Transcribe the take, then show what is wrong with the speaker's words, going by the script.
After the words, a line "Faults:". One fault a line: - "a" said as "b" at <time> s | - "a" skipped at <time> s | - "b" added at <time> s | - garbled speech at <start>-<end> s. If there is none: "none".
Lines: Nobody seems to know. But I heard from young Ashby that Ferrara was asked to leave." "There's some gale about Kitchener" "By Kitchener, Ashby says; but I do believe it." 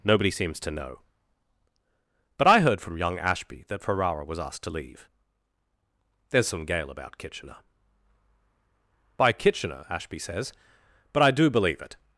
Nobody seems to know. But I heard from young Ashby that Ferrara was asked to leave." "There's some gale about Kitchener" "By Kitchener, Ashby says; but I do believe it."
Faults:
none